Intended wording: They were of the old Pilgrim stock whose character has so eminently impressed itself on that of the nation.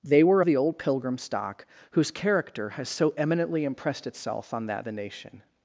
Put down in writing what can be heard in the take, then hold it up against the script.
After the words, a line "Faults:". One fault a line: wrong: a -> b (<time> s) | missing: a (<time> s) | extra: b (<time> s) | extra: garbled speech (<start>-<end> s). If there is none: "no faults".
They were the old Pilgrim stock whose character has so eminently impressed itself on that the nation.
Faults:
missing: of (0.4 s)
missing: of (4.9 s)